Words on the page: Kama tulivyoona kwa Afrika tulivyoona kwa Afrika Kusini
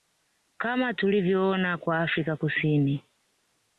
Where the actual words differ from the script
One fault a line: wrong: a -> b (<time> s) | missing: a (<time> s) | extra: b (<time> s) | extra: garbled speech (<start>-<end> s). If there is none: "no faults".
missing: tulivyoona kwa Afrika (2.4 s)